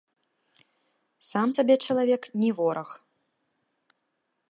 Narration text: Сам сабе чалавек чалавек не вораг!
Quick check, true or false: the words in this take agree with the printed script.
false